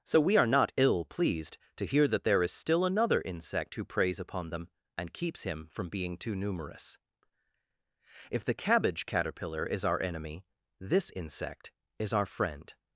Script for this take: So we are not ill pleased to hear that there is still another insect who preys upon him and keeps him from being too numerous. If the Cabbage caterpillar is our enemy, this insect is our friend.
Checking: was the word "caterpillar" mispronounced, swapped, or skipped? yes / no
no